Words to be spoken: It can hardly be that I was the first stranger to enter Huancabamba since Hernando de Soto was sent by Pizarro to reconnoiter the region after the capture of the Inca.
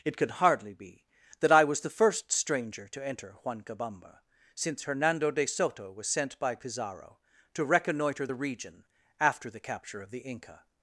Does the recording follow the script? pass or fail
fail